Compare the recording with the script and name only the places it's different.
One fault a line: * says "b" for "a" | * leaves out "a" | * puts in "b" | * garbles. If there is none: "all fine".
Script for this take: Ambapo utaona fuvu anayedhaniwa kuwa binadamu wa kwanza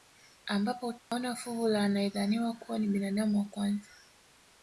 * puts in "la"
* puts in "ni"